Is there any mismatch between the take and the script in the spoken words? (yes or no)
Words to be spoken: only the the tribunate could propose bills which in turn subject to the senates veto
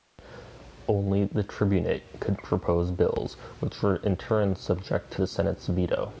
yes